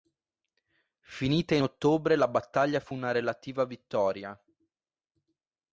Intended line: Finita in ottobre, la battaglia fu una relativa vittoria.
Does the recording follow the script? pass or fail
pass